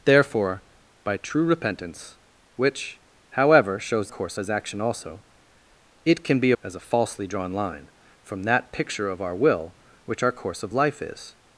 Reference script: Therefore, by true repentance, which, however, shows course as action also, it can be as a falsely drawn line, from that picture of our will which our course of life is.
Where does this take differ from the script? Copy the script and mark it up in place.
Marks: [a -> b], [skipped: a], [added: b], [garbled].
Therefore, by true repentance, which, however, shows course as action also, it can be as a falsely drawn line, from that picture of our will which our course of life is.